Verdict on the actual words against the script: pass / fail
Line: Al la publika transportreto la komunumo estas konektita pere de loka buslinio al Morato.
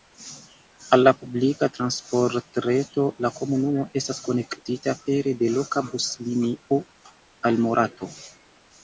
pass